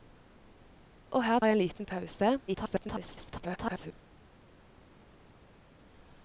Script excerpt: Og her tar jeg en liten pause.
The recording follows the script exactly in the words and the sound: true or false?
false